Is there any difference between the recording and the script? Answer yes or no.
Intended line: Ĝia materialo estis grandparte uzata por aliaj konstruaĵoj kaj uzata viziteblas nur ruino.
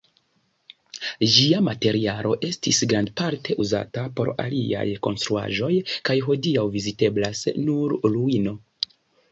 yes